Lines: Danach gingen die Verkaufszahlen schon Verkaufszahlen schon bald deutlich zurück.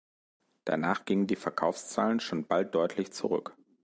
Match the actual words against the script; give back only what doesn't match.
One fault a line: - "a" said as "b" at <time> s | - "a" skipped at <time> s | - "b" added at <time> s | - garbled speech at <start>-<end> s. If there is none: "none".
- "Verkaufszahlen schon" skipped at 2.5 s